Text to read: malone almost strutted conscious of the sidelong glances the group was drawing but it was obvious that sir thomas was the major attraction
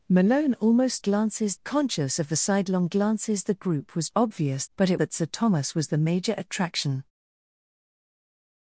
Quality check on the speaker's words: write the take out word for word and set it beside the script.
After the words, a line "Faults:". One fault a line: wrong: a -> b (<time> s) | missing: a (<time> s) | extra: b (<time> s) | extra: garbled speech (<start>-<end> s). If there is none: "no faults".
malone almost glances conscious of the sidelong glances the group was obvious but it that sir thomas was the major attraction
Faults:
wrong: strutted -> glances (1.0 s)
wrong: drawing -> obvious (4.2 s)
missing: was obvious (5.0 s)